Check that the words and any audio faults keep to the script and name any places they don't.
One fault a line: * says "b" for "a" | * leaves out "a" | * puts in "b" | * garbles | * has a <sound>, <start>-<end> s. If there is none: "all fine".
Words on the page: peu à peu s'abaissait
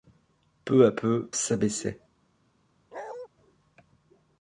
* has a bark, 2.9-3.3 s